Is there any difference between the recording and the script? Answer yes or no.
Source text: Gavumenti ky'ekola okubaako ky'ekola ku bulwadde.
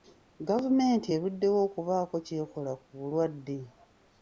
yes